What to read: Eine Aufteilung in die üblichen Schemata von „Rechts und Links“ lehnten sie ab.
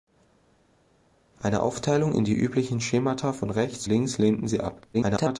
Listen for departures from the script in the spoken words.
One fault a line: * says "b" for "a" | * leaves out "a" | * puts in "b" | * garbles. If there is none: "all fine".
* leaves out "und"
* garbles